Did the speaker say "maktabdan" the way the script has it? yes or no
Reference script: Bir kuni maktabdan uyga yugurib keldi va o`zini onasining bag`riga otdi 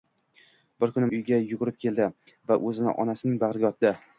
no